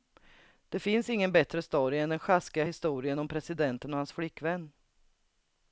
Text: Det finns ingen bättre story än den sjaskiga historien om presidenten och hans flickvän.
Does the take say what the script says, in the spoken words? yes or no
yes